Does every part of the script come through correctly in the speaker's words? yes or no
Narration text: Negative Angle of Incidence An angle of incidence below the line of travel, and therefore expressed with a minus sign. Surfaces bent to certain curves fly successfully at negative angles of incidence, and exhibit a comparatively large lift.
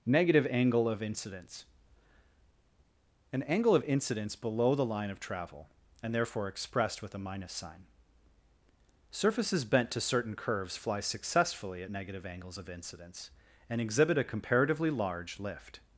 yes